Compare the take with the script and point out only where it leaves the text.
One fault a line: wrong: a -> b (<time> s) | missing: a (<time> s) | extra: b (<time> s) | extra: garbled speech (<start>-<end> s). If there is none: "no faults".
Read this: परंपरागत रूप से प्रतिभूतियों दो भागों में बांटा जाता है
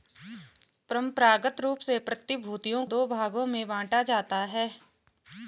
no faults